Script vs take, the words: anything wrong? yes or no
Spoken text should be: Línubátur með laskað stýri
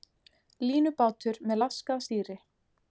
no